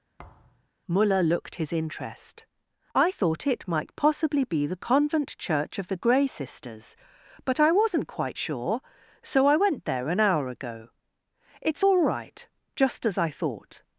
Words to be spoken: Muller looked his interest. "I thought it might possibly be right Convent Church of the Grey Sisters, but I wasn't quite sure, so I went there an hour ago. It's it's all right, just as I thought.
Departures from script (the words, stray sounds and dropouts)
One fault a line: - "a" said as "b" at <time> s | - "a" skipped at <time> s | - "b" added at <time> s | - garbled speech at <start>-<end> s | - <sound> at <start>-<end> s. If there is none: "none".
- thud at 0.2-0.7 s
- "right" said as "the" at 4.7 s
- "it's" skipped at 11.8 s